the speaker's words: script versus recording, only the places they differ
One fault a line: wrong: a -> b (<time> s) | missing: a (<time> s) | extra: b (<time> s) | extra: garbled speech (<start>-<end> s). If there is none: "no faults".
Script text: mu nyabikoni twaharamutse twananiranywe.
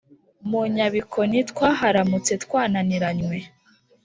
no faults